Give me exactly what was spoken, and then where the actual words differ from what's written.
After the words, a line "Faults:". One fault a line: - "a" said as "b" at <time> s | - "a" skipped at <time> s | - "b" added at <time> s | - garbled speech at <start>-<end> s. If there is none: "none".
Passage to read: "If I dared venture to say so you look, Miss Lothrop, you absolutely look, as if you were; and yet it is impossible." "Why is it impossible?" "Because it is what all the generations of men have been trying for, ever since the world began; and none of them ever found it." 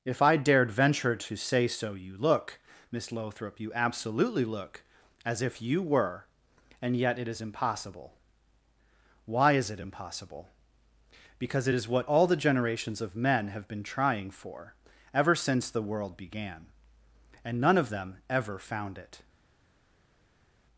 "If I dared venture to say so you look, Miss Lothrop, you absolutely look, as if you were; and yet it is impossible." "Why is it impossible?" "Because it is what all the generations of men have been trying for, ever since the world began; and none of them ever found it."
Faults:
none